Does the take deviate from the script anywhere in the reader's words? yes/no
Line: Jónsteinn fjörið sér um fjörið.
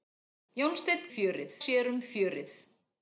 no